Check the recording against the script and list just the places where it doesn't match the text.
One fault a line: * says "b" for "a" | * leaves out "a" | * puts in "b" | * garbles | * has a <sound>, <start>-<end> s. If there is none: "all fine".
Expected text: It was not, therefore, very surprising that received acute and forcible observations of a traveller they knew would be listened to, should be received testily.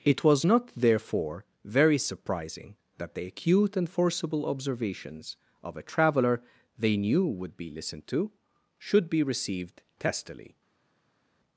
* says "the" for "received"